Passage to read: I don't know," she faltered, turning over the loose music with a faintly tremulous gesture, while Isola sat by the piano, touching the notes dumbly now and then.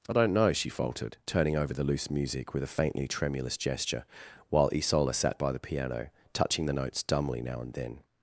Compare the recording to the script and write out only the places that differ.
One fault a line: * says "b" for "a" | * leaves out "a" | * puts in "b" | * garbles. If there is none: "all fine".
all fine